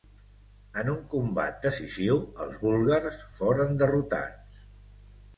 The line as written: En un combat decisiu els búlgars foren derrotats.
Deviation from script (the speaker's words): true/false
false